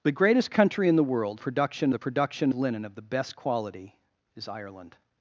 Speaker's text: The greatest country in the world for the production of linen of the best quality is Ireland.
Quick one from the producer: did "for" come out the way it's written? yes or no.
no